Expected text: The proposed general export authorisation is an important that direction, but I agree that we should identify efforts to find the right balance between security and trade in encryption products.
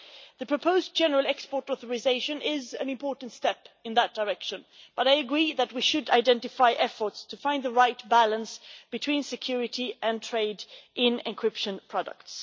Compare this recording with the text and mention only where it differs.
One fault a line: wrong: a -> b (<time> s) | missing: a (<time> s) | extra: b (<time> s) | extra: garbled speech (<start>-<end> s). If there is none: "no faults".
extra: step in (3.3 s)